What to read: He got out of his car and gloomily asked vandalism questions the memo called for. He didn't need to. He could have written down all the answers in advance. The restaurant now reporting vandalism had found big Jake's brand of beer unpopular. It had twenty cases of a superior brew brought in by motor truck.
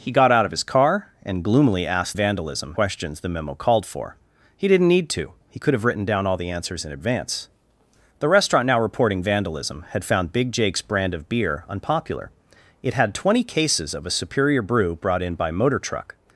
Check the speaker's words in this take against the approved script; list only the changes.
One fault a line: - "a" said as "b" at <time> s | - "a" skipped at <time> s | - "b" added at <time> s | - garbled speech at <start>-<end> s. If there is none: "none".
none